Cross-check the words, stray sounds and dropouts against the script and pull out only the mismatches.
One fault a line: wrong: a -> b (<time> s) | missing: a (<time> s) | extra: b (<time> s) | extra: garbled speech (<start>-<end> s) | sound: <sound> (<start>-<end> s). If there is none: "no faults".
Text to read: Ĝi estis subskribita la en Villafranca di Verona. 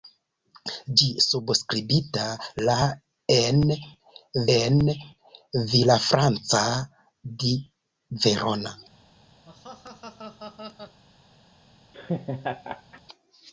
missing: estis (1.1 s)
extra: en (4.6 s)
sound: laugh (9.5-11.0 s)
sound: laugh (11.9-13.0 s)